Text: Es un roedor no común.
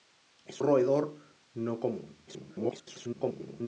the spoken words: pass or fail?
fail